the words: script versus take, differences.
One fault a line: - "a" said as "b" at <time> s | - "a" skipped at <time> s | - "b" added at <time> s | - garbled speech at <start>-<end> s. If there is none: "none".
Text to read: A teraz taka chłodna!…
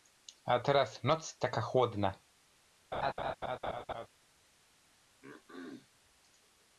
- "noc" added at 1.0 s